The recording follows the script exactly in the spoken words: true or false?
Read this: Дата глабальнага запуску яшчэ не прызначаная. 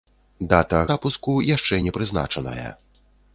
false